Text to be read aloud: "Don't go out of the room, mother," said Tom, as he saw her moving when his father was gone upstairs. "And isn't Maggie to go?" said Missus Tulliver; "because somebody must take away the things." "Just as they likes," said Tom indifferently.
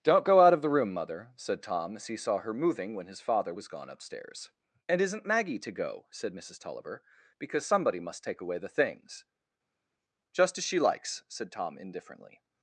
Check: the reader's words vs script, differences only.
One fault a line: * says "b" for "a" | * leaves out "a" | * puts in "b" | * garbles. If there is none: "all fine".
* says "she" for "they"